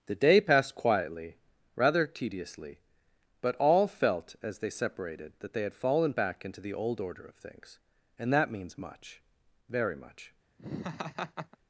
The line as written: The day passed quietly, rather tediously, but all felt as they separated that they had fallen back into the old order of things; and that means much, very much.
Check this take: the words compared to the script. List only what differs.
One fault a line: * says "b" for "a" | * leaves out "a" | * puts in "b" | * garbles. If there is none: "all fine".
all fine